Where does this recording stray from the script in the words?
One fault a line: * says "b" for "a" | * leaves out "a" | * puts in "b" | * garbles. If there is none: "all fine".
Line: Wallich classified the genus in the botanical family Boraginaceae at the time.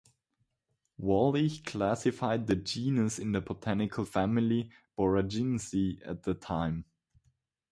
all fine